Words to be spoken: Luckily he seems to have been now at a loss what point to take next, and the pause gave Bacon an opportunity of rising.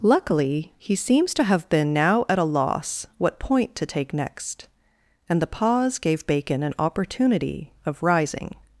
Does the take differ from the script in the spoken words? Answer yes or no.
no